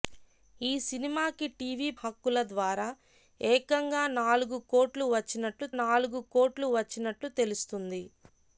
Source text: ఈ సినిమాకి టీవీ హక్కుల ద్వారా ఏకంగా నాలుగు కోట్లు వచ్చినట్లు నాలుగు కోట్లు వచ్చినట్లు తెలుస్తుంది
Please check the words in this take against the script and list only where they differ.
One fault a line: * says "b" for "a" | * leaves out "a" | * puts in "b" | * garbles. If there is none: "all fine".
all fine